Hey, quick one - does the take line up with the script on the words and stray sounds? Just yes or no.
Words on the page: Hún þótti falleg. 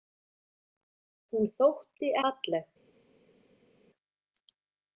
yes